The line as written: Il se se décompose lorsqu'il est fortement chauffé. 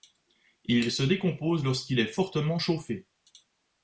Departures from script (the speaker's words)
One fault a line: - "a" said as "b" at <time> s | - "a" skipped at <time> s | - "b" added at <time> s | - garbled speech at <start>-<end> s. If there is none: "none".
- "se" skipped at 1.0 s